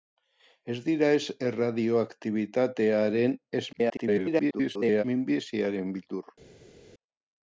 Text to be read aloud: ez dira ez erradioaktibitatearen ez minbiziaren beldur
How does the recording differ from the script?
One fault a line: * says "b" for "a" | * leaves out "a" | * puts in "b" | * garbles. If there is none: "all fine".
* garbles